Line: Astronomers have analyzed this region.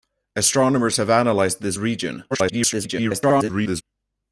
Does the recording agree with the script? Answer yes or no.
no